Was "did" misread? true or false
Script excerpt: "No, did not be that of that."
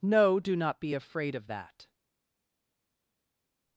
true